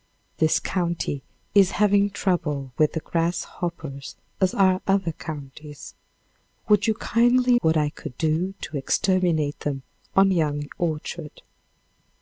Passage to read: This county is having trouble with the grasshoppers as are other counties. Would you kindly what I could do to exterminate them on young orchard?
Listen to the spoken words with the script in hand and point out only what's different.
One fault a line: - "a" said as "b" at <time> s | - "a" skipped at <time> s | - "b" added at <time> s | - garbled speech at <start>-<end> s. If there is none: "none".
none